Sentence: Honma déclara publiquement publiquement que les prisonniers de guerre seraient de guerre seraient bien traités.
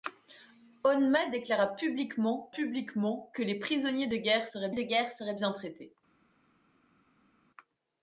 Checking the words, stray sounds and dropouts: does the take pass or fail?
pass